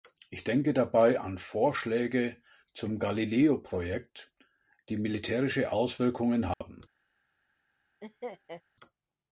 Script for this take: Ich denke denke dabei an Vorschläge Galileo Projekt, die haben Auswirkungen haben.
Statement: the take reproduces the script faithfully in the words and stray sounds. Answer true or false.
false